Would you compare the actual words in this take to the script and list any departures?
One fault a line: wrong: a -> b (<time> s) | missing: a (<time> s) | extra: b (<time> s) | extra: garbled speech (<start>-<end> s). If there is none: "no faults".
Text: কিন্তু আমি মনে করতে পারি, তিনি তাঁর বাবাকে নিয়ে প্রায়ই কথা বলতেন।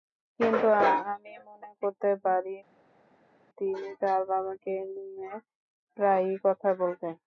no faults